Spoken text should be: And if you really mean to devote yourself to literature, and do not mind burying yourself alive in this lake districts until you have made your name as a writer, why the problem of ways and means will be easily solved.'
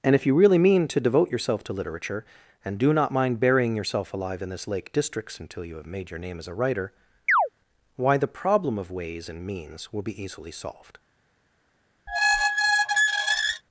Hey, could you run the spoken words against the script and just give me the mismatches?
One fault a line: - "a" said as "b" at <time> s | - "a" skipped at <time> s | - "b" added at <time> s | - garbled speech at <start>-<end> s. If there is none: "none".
none